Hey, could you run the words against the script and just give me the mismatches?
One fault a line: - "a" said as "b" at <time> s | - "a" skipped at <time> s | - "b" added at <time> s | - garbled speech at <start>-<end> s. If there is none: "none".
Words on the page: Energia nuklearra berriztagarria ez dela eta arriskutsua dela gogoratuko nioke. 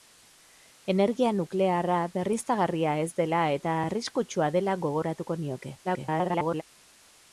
- garbled speech at 5.8-6.6 s